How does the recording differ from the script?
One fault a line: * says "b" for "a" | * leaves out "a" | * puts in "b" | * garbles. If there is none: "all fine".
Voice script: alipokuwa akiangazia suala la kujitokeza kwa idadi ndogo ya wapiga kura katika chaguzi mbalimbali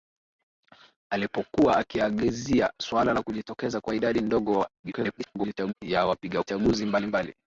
* garbles
* leaves out "kura katika"